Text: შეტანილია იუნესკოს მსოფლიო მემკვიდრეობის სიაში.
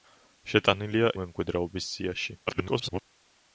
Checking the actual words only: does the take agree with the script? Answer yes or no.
no